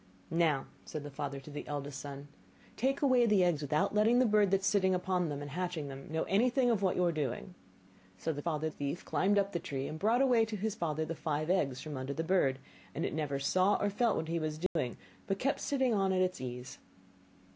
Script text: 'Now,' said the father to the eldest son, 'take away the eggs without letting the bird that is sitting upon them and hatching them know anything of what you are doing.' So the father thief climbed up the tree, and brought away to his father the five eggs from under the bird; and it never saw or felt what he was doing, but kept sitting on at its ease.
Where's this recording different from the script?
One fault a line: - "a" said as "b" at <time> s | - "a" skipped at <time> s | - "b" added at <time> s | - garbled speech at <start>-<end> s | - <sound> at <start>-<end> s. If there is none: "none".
- dropout at 14.7-14.8 s